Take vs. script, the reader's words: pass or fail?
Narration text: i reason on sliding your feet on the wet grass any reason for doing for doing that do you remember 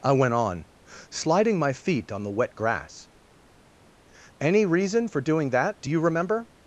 fail